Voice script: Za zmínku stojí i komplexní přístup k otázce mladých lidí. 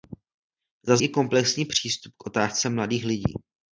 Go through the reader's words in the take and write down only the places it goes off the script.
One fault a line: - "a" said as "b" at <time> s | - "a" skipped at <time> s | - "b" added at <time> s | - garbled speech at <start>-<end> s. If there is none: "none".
- "zmínku stojí" skipped at 1.0 s